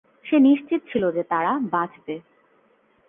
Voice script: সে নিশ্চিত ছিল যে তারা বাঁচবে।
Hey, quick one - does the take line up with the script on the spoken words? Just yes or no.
yes